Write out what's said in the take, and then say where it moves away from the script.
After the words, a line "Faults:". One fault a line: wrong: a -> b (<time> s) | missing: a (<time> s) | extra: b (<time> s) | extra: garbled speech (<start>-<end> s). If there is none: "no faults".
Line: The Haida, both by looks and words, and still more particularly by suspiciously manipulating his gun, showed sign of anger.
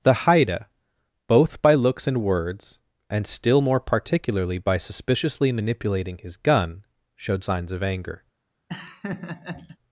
The Haida, both by looks and words, and still more particularly by suspiciously manipulating his gun, showed signs of anger.
Faults:
wrong: sign -> signs (7.4 s)